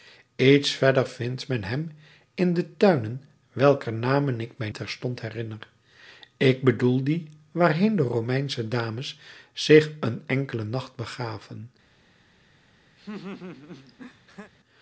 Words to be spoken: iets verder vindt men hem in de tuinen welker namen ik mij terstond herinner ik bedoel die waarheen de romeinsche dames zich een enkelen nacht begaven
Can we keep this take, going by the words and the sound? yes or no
no